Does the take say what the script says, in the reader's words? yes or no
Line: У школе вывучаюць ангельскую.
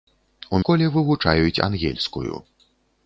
yes